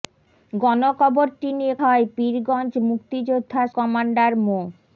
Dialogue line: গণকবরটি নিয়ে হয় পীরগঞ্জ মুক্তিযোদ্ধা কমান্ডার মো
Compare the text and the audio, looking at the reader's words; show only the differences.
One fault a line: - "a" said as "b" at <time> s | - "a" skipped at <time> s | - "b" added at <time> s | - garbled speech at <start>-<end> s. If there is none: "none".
none